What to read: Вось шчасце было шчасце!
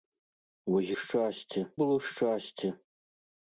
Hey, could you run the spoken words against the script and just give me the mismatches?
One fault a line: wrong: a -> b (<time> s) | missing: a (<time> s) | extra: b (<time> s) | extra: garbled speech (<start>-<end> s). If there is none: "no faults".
no faults